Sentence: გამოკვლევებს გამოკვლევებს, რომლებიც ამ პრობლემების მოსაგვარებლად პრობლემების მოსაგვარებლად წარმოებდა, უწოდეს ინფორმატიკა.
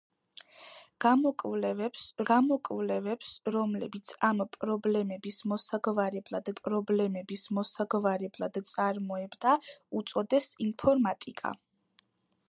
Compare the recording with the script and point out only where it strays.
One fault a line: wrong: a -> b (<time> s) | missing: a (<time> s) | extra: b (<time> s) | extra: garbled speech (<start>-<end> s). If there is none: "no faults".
no faults